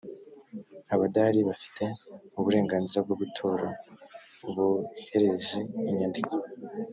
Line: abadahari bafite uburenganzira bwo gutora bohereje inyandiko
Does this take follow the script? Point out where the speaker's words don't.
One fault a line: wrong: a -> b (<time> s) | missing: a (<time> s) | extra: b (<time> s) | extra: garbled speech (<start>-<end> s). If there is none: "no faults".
no faults